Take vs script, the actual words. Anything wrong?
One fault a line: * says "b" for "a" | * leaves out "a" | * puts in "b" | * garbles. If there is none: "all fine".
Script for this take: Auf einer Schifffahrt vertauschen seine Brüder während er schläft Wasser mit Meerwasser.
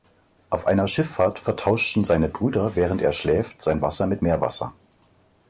* puts in "sein"